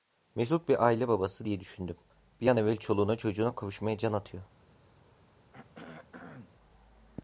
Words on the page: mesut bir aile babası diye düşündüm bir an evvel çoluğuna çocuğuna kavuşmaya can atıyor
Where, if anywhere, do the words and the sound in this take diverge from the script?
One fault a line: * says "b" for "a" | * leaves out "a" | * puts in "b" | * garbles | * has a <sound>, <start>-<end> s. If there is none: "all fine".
* has a throat clearing, 5.5-6.5 s